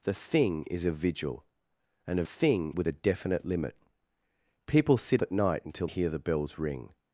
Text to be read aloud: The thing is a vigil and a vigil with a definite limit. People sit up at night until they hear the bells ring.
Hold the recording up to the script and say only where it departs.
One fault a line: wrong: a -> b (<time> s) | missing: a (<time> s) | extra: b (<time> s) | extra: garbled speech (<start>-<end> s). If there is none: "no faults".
wrong: vigil -> thing (2.2 s)
missing: up (5.2 s)
missing: they (5.9 s)